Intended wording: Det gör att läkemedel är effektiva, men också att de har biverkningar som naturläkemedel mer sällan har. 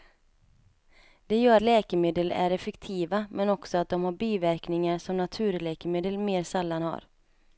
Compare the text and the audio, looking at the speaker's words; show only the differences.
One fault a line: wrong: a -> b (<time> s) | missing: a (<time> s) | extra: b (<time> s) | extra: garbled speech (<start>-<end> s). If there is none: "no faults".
missing: att (1.6 s)